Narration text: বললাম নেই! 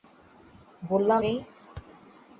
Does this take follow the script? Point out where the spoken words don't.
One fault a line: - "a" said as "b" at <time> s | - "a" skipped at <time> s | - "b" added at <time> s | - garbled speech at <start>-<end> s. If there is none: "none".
none